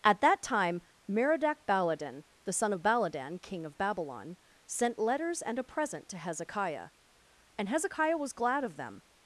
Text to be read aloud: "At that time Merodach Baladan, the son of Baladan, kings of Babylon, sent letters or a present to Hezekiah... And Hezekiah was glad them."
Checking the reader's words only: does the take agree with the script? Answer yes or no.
no